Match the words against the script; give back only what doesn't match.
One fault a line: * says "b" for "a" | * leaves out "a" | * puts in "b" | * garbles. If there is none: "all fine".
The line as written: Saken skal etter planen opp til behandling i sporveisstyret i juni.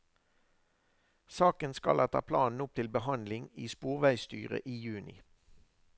all fine